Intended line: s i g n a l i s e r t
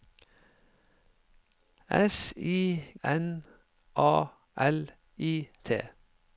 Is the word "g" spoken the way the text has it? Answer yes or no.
no